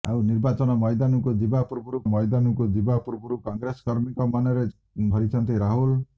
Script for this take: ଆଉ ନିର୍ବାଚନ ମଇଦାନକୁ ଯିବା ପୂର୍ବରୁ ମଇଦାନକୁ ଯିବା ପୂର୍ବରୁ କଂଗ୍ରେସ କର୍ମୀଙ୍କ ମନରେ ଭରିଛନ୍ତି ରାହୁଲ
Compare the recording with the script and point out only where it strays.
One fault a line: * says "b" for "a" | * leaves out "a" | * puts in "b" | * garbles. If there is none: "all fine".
all fine